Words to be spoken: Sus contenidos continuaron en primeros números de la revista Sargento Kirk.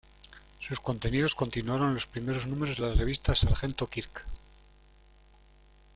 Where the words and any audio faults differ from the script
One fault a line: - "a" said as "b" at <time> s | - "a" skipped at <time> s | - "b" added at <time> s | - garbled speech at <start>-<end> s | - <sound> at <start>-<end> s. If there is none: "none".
- "los" added at 1.9 s